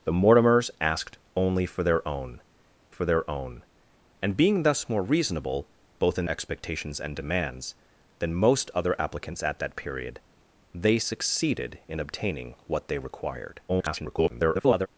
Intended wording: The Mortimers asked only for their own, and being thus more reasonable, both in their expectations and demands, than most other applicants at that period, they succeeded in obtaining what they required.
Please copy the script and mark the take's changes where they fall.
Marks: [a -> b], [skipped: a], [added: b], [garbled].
The Mortimers asked only for their own, [added: for their own] and being thus more reasonable, both in [skipped: their] expectations and demands, than most other applicants at that period, they succeeded in obtaining what they required. [garbled]